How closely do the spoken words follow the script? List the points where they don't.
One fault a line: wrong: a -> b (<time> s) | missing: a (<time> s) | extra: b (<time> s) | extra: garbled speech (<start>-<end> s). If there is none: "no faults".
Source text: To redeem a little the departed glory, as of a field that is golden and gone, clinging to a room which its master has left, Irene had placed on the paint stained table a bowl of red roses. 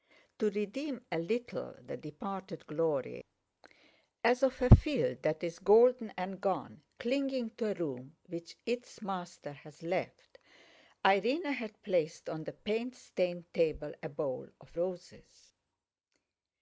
missing: red (14.8 s)